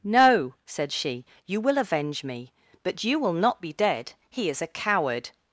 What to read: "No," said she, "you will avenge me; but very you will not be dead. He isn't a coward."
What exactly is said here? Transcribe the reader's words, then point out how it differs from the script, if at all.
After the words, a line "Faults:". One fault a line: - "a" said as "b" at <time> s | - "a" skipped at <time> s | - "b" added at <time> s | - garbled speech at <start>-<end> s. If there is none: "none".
"No," said she, "you will avenge me; but you will not be dead. He is a coward."
Faults:
- "very" skipped at 3.0 s
- "isn't" said as "is" at 4.5 s